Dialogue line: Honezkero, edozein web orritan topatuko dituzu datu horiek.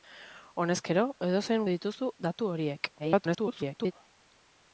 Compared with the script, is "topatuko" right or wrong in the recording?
wrong